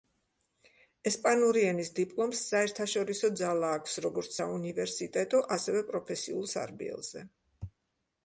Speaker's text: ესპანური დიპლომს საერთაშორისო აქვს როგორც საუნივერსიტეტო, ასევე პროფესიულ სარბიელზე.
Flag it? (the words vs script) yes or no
yes